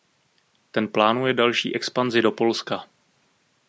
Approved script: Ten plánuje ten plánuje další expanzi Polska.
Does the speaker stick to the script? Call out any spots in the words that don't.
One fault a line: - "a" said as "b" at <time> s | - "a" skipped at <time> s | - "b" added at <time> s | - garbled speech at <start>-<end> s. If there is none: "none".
- "ten plánuje" skipped at 1.3 s
- "do" added at 2.2 s